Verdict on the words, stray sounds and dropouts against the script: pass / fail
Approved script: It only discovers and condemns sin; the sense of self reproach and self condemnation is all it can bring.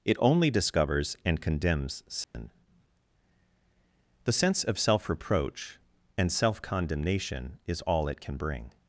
fail